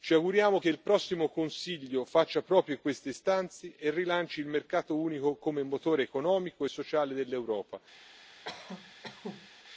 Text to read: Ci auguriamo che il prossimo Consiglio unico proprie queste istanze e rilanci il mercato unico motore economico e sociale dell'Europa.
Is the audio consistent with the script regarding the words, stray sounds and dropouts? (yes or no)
no